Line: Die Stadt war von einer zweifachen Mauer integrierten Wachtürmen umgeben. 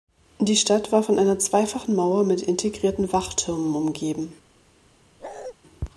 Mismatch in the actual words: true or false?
true